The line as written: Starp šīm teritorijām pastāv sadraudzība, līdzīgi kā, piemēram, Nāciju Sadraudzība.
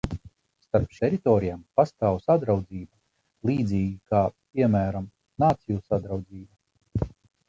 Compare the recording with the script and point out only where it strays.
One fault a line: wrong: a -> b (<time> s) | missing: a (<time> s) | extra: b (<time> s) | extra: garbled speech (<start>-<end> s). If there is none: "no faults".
missing: šīm (0.9 s)